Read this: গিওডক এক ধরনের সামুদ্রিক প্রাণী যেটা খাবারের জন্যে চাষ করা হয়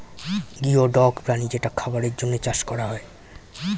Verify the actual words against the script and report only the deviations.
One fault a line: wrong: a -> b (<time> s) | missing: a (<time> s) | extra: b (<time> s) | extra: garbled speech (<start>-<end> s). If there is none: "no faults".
missing: এক ধরনের সামুদ্রিক (1.1 s)